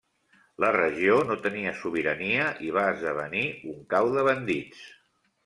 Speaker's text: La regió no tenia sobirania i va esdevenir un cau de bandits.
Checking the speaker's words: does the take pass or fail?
pass